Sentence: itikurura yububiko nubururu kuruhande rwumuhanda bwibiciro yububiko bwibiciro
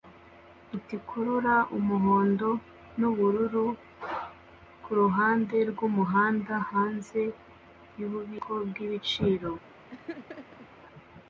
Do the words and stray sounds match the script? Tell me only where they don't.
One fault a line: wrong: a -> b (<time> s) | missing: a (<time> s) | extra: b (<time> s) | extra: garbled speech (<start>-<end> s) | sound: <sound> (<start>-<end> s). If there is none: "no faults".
wrong: yububiko -> umuhondo (1.8 s)
wrong: bwibiciro -> hanze (6.7 s)
sound: laugh (9.9-10.7 s)